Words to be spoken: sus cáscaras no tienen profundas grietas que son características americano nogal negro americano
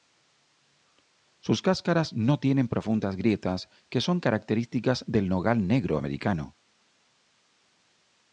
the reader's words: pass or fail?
fail